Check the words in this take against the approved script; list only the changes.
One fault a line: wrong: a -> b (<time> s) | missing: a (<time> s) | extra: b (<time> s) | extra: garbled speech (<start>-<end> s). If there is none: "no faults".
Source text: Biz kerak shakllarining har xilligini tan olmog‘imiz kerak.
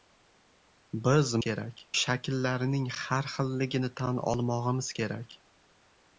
no faults